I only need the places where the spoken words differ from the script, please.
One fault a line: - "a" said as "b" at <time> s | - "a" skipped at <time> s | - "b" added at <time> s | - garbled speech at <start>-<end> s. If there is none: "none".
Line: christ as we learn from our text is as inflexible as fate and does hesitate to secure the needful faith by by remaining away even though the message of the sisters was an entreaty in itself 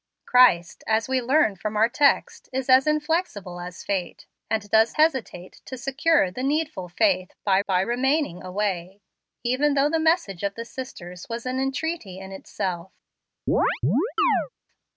none